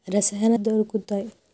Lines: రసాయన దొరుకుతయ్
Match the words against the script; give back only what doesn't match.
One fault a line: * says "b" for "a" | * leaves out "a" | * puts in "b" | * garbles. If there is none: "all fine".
all fine